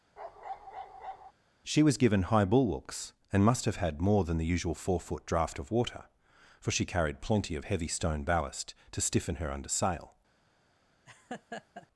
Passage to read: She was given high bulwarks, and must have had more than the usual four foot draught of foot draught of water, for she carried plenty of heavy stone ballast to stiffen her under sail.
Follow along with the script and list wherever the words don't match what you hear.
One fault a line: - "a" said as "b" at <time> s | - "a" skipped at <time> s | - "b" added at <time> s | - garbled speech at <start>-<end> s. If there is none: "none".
- "foot draught of" skipped at 5.7 s